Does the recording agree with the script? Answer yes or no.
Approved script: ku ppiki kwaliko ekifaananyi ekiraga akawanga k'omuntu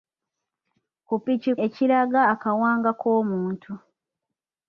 no